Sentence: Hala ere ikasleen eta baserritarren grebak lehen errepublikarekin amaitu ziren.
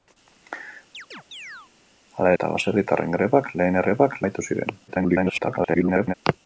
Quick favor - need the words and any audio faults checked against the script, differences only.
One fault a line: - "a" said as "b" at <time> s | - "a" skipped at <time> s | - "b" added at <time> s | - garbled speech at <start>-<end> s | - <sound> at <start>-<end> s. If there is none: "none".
- chirp at 0.9-1.7 s
- "ere ikasleen" skipped at 2.3 s
- "errepublikarekin" said as "grebak" at 3.9 s
- garbled speech at 4.9-6.1 s